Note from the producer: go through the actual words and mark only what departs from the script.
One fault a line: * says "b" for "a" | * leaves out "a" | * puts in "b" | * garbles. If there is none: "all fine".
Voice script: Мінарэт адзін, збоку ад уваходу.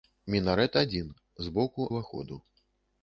* leaves out "ад"